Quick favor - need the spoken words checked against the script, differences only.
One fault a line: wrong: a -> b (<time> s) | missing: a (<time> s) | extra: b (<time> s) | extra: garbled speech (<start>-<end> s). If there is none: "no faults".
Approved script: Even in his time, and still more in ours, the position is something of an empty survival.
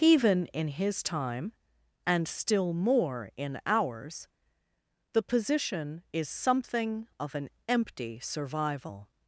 no faults